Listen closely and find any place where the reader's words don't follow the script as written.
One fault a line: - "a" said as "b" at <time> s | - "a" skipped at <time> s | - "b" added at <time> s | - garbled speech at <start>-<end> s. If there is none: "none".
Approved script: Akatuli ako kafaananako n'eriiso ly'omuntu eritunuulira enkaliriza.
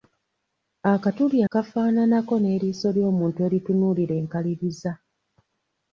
- "ako" skipped at 1.4 s